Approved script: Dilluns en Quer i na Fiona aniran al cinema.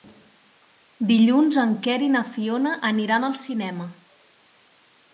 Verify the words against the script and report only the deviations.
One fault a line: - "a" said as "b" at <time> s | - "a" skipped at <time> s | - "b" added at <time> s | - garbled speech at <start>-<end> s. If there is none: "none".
none